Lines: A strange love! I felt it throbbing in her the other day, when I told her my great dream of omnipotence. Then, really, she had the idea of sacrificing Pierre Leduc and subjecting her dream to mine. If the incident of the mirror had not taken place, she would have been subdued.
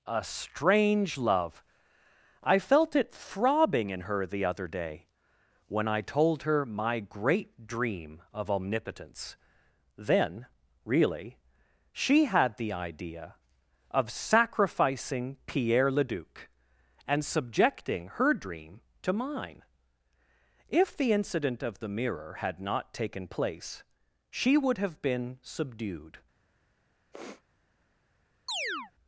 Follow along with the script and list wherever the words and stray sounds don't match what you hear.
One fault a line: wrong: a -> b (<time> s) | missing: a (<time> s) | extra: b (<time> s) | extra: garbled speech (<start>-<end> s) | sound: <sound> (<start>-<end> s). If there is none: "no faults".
sound: sniff (27.1-27.4 s)
sound: chirp (28.5-28.9 s)